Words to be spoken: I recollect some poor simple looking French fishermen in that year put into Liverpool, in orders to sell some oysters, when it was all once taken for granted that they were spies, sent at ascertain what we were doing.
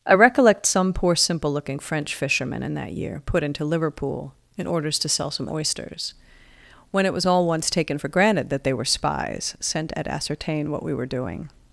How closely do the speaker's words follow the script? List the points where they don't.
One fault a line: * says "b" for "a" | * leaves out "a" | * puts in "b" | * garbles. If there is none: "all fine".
all fine